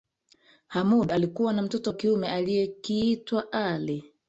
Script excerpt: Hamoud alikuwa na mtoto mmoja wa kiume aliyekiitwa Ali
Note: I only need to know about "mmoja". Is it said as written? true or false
false